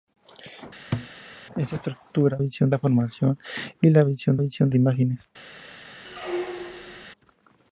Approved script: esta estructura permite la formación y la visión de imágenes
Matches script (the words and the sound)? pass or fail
fail